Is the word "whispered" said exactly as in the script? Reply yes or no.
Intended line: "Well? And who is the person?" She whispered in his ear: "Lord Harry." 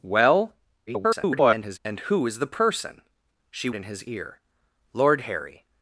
no